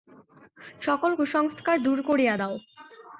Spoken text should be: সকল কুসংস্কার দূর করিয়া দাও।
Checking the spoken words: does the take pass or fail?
pass